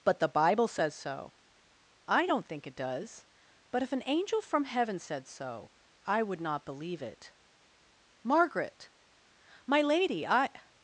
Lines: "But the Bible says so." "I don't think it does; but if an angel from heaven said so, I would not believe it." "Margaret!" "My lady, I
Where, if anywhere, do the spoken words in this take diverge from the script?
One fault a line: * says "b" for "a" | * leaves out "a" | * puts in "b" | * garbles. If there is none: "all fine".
all fine